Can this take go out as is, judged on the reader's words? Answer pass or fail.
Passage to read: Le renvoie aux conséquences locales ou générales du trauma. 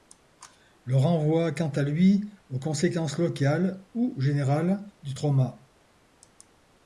fail